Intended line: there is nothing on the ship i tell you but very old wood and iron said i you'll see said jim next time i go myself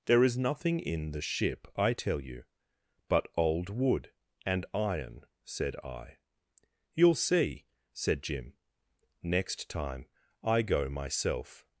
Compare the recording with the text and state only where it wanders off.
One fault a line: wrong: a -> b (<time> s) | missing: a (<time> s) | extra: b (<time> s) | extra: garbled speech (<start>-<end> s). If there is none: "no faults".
wrong: on -> in (0.8 s)
missing: very (3.3 s)